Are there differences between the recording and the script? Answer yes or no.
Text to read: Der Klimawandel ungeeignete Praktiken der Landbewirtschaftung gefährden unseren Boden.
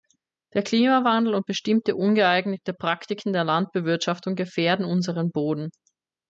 yes